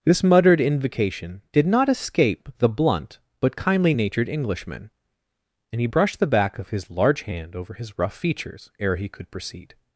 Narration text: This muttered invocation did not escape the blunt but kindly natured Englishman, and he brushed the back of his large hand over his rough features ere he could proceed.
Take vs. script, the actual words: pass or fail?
pass